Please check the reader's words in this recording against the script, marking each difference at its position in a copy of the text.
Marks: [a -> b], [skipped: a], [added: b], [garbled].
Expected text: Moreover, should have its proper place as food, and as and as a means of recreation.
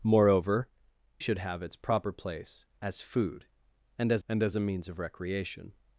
Moreover, should have its proper place as food, and as and as a means of recreation.